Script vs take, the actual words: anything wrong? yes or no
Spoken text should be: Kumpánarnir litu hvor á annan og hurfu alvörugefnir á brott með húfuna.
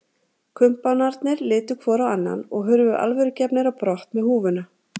no